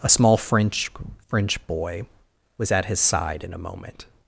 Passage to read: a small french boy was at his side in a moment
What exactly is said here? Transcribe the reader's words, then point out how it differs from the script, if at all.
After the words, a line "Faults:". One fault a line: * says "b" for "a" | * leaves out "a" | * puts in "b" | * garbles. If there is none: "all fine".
a small french french boy was at his side in a moment
Faults:
* puts in "french"